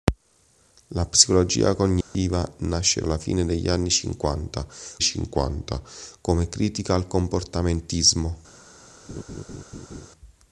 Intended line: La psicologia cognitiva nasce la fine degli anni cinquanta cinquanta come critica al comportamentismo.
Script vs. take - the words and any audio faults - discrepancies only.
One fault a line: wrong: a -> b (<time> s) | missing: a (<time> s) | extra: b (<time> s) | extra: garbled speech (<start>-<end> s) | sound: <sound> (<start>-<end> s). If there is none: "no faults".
sound: dropout (2.0-2.1 s)
sound: laugh (9.1-10.1 s)